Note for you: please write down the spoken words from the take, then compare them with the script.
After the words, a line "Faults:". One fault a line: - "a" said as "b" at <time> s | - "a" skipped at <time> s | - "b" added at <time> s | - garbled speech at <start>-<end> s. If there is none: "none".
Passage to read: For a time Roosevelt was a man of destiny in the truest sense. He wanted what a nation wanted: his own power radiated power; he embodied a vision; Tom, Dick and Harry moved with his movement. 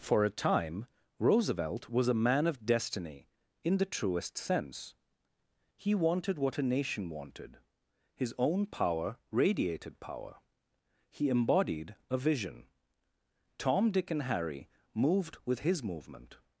For a time Roosevelt was a man of destiny in the truest sense. He wanted what a nation wanted: his own power radiated power; he embodied a vision; Tom, Dick and Harry moved with his movement.
Faults:
none